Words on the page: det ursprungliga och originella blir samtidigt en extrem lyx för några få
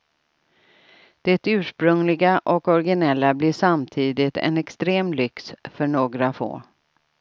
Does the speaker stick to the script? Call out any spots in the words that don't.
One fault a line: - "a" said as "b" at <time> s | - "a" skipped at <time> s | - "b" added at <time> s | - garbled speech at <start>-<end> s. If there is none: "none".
none